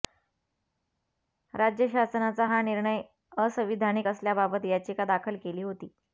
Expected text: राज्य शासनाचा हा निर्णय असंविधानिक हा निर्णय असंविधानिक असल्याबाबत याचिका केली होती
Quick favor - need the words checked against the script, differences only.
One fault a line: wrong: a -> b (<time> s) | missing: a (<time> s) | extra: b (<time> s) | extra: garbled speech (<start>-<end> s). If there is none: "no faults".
missing: हा निर्णय असंविधानिक (4.1 s)
extra: दाखल (5.1 s)